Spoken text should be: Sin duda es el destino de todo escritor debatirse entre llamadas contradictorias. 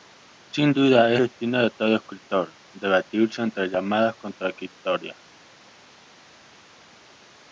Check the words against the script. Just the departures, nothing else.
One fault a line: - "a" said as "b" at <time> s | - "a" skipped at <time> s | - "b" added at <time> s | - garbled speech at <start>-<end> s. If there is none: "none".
- "el" skipped at 1.2 s